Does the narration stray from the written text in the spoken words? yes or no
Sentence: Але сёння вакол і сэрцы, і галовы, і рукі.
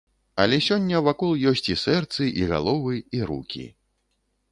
yes